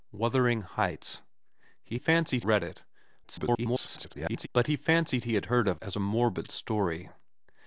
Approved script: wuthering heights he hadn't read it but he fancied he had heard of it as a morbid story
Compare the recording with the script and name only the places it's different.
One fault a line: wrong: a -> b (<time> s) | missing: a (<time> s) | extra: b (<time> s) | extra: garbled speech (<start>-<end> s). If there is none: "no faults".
wrong: hadn't -> fancied (1.9 s)
extra: garbled speech (3.2-4.5 s)
missing: it (5.8 s)